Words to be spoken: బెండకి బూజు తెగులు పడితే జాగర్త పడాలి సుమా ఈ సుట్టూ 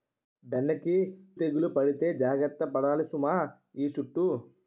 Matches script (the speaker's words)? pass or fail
fail